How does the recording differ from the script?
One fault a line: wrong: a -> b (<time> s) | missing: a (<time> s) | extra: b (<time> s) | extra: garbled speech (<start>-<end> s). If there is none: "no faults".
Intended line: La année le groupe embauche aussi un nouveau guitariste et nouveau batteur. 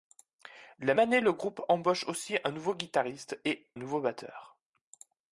no faults